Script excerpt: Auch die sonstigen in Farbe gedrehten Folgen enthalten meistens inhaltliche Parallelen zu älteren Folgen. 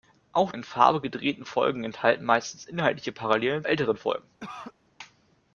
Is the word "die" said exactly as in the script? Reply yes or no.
no